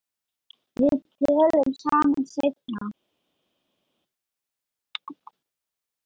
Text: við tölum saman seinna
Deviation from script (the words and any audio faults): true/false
false